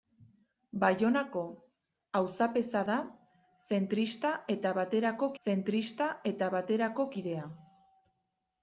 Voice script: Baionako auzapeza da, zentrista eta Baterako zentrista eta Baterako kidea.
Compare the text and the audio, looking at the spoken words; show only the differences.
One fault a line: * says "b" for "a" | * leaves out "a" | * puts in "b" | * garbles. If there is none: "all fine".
all fine